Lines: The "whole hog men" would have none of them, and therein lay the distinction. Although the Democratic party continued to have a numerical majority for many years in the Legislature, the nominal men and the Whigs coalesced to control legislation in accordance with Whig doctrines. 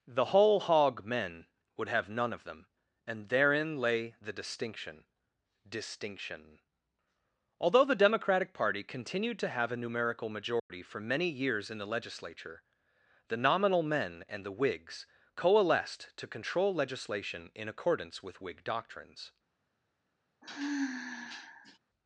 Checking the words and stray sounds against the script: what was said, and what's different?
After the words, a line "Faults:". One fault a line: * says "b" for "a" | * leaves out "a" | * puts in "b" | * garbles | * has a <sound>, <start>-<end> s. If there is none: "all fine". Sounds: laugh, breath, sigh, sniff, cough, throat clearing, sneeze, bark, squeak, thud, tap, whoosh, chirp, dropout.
The "whole hog men" would have none of them, and therein lay the distinction distinction. Although the Democratic party continued to have a numerical majority for many years in the Legislature, the nominal men and the Whigs coalesced to control legislation in accordance with Whig doctrines.
Faults:
* puts in "distinction"
* has a dropout, 10.6-10.7 s
* has a sigh, 20.4-21.8 s